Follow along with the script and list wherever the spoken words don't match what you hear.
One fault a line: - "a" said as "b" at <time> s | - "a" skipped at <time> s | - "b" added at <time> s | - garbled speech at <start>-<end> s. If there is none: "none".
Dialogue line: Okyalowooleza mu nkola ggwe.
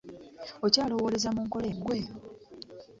none